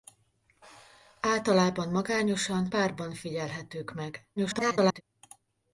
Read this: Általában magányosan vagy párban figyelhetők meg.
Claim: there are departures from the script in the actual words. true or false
true